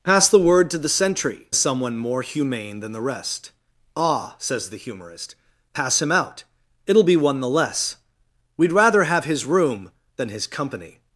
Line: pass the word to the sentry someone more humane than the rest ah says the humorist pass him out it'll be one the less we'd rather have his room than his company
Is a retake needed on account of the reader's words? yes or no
no